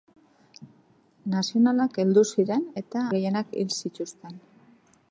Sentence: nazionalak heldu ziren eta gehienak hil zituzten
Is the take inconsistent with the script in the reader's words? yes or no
no